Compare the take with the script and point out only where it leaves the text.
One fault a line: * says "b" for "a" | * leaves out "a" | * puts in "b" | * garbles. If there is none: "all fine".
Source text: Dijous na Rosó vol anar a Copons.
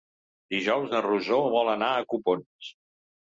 all fine